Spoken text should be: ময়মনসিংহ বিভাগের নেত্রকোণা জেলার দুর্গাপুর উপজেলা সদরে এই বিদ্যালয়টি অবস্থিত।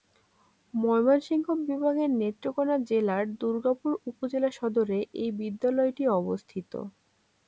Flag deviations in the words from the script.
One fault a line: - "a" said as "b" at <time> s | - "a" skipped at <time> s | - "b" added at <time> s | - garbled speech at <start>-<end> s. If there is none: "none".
none